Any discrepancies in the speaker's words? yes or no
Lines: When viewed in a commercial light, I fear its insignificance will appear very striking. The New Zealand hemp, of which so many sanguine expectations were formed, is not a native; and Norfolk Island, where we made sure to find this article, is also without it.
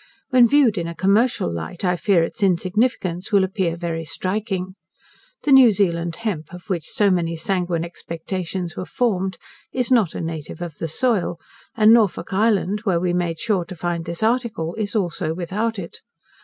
yes